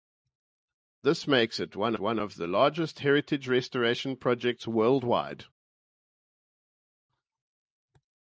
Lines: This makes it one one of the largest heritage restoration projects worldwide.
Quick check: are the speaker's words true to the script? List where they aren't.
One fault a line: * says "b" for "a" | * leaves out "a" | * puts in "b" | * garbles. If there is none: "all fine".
all fine